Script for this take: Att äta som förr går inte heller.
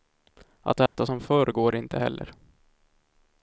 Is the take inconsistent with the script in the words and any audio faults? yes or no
yes